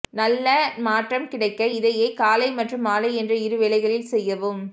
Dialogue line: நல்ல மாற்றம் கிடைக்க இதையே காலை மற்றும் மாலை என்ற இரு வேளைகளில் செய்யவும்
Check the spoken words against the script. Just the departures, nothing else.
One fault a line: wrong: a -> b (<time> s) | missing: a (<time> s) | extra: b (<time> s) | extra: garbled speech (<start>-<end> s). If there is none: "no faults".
no faults